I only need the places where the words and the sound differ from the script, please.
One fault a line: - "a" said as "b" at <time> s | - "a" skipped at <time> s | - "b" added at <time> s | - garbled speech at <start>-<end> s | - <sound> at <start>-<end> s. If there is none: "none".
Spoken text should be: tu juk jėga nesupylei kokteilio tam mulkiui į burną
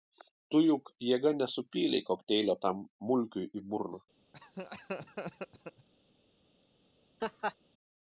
- laugh at 4.3-5.9 s
- laugh at 7.2-7.5 s